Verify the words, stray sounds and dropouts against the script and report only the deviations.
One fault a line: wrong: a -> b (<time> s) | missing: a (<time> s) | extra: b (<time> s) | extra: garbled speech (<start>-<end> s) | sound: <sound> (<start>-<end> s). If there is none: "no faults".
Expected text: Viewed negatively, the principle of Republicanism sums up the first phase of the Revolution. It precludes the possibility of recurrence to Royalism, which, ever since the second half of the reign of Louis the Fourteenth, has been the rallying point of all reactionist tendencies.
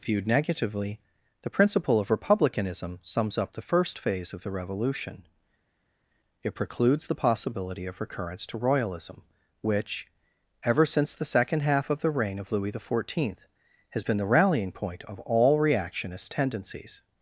no faults